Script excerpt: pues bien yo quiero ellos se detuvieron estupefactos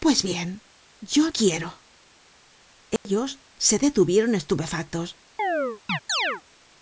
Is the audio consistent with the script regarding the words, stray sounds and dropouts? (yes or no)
no